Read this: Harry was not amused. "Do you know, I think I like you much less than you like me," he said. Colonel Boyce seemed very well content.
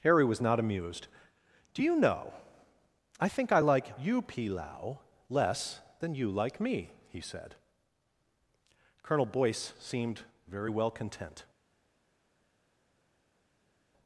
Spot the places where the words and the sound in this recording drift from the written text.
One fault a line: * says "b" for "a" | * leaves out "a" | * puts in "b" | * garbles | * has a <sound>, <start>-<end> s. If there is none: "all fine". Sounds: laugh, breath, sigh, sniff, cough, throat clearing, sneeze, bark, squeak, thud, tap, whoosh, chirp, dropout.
* says "pilau" for "much"